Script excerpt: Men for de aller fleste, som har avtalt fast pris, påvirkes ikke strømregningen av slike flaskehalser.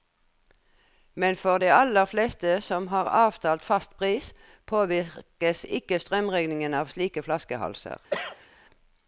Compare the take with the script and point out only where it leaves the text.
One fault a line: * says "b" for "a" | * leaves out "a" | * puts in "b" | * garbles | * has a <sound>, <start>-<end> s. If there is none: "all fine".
* has a cough, 8.1-8.5 s